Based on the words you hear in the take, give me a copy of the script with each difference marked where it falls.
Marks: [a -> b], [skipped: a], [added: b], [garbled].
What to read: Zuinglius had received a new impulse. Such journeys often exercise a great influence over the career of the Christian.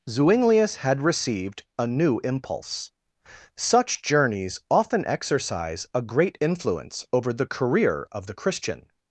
Zuinglius had received a new impulse. Such journeys often exercise a great influence over the career of the Christian.